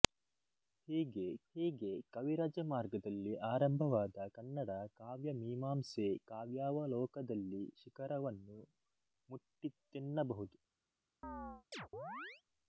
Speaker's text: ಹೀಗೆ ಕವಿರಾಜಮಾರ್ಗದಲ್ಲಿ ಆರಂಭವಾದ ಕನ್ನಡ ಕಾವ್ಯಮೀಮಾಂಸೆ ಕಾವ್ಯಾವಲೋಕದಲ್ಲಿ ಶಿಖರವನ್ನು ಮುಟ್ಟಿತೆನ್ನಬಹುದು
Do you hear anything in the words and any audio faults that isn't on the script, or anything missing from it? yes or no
yes